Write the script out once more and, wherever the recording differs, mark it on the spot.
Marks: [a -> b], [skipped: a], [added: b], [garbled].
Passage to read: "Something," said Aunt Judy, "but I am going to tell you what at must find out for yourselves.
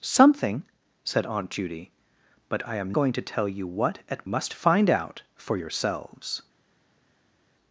"Something," said Aunt Judy, "but I am going to tell you what at must find out for yourselves.